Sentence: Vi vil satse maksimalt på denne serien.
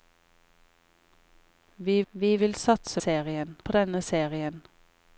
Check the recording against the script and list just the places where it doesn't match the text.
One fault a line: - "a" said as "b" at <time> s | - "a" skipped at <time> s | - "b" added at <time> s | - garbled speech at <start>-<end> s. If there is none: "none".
- "vi" added at 2.1 s
- "maksimalt" said as "serien" at 3.0 s